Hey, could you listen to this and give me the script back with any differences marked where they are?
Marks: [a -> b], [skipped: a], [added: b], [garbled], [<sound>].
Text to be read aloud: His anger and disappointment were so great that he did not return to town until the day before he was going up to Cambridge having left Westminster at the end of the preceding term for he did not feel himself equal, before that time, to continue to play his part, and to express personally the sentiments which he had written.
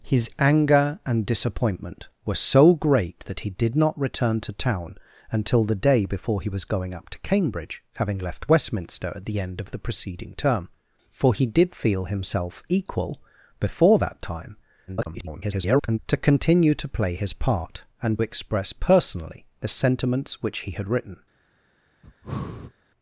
His anger and disappointment were so great that he did not return to town until the day before he was going up to Cambridge having left Westminster at the end of the preceding term for he did [skipped: not] feel himself equal, before that time, [garbled] to continue to play his part, and [skipped: to] express personally the sentiments which he had written. [breath]